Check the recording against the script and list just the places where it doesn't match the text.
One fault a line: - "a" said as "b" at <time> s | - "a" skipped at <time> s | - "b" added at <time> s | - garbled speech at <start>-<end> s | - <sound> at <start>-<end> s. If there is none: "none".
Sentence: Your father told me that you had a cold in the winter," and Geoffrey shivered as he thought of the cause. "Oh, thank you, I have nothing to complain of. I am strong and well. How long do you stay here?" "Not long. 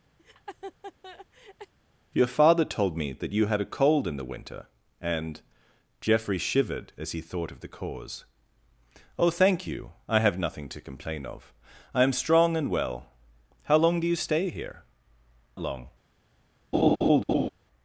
- laugh at 0.2-1.7 s
- "Not" skipped at 14.8 s
- laugh at 16.7-17.5 s